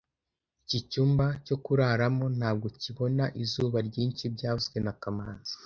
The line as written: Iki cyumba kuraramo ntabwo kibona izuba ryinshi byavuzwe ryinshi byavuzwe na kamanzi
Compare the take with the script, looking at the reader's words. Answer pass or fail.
fail